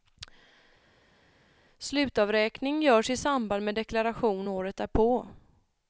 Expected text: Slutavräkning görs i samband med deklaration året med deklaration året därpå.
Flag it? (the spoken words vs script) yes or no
yes